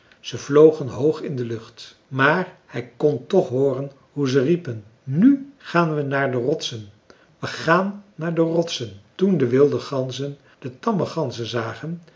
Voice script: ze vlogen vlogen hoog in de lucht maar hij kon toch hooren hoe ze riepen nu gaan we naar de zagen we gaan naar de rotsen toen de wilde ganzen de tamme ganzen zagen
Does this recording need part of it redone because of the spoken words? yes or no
yes